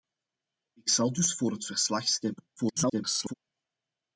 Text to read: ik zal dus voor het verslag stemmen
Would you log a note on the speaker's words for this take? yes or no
yes